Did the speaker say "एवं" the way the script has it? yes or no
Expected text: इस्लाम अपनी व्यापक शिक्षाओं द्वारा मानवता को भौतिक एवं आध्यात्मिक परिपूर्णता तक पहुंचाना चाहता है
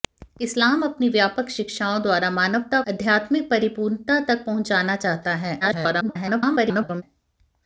no